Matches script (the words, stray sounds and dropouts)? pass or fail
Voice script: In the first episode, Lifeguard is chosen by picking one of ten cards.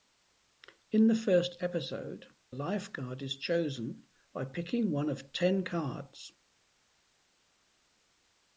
pass